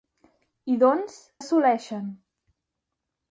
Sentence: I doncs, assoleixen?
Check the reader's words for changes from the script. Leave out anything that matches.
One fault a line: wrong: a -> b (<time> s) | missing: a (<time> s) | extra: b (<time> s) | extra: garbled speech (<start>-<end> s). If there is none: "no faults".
no faults